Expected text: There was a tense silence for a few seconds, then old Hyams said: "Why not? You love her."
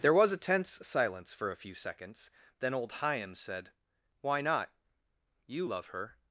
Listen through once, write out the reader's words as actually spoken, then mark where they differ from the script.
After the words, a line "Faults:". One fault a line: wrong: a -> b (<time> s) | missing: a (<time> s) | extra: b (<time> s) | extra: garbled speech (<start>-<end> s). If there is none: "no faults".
There was a tense silence for a few seconds, then old Hyams said: "Why not? You love her."
Faults:
no faults